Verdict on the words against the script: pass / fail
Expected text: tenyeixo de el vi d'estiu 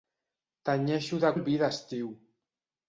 pass